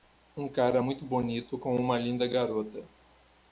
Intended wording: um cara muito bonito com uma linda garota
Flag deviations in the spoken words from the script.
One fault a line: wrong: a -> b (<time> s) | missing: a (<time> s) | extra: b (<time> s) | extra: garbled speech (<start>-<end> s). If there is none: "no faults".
no faults